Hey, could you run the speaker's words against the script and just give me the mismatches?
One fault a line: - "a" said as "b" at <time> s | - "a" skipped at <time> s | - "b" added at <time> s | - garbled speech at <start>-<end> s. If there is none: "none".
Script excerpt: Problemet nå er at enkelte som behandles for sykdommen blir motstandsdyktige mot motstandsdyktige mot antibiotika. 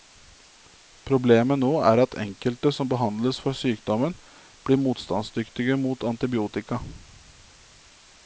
- "motstandsdyktige mot" skipped at 6.1 s